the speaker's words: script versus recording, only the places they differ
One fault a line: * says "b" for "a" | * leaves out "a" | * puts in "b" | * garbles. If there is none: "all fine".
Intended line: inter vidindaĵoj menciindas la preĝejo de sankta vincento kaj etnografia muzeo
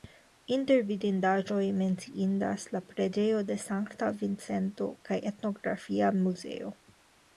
all fine